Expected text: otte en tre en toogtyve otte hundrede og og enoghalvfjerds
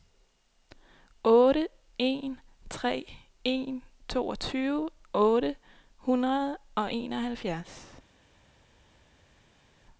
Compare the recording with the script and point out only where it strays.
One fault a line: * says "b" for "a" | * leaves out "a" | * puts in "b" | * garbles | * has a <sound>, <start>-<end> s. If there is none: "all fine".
* leaves out "og"